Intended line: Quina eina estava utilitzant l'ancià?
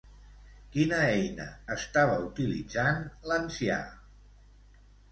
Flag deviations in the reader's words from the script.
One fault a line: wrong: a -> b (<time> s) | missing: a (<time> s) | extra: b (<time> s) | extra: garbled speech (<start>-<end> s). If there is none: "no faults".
no faults